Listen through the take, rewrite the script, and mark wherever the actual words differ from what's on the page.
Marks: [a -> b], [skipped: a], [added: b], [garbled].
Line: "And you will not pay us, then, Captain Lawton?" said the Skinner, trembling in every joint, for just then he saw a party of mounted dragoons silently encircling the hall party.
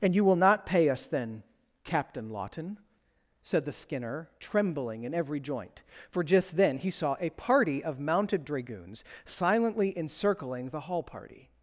"And you will not pay us, then, Captain Lawton?" said the Skinner, trembling in every joint, for just then he saw a party of mounted dragoons silently encircling the hall party.